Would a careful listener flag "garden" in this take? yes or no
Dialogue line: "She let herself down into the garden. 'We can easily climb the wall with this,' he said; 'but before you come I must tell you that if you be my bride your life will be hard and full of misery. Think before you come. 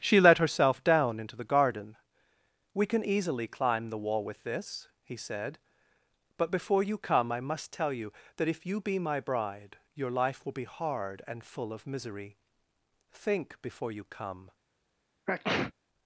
no